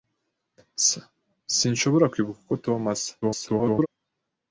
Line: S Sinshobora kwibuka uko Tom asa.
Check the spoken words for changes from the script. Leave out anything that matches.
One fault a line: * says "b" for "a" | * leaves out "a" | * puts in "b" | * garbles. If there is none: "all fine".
* garbles